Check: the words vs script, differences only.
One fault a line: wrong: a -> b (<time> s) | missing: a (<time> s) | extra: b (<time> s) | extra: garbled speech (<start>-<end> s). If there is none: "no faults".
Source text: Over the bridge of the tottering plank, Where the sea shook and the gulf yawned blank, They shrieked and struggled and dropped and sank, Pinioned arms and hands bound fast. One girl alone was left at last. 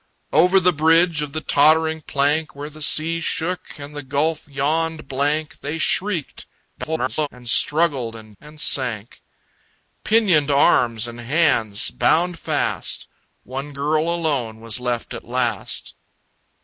extra: garbled speech (6.8-7.3 s)
missing: dropped (8.4 s)